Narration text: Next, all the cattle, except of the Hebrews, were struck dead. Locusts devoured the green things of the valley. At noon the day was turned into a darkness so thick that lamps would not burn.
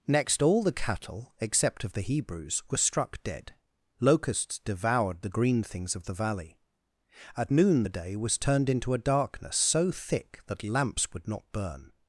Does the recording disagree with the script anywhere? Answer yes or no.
no